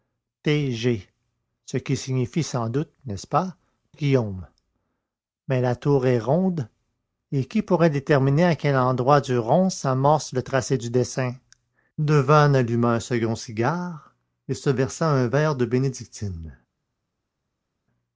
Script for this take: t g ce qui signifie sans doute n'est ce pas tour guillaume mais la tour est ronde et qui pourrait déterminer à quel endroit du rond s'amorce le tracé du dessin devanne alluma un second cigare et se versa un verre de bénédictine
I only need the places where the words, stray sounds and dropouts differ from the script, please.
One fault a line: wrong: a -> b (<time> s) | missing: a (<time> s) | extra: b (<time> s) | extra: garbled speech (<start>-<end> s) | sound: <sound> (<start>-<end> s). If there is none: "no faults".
missing: tour (3.5 s)